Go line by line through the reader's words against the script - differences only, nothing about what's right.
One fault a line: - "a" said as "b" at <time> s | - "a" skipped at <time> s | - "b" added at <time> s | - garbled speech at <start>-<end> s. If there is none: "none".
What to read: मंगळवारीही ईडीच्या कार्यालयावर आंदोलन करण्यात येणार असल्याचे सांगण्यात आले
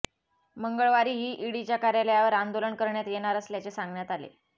none